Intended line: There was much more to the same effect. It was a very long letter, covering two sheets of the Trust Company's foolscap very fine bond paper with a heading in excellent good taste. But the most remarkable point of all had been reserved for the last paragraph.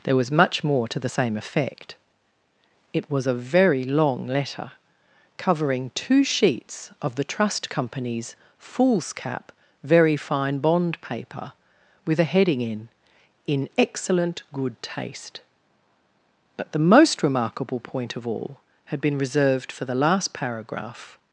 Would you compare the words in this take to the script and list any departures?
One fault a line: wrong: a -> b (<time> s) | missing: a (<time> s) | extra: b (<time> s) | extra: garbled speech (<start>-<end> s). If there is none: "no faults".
extra: in (13.5 s)